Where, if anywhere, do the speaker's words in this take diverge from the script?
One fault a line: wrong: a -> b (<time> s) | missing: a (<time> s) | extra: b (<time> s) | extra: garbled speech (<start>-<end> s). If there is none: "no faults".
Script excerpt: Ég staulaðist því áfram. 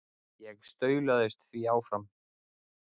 no faults